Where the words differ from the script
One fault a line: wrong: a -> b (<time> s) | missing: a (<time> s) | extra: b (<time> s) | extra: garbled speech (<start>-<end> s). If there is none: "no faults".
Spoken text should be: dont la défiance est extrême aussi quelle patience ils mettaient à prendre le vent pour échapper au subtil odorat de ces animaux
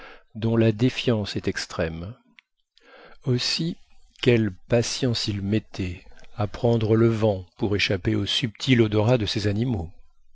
no faults